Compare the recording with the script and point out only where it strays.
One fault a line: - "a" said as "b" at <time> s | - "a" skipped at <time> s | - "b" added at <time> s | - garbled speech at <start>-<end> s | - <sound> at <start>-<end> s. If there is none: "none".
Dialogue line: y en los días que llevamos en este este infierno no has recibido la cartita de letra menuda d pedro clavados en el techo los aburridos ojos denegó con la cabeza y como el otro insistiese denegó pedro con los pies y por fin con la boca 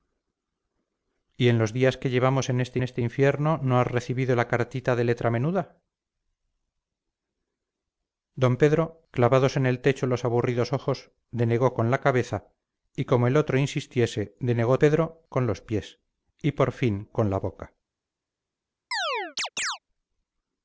- chirp at 18.9-19.8 s